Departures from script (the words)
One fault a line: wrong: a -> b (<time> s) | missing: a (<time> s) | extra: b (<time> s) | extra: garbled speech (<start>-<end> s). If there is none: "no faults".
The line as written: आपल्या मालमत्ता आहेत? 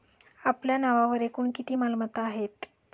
extra: नावावर एकूण किती (0.8 s)